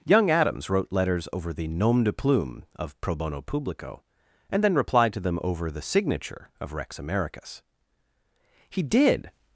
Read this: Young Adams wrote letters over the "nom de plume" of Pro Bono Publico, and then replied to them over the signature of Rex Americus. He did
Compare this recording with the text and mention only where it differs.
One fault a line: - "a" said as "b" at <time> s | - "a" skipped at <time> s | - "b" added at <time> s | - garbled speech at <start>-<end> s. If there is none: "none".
none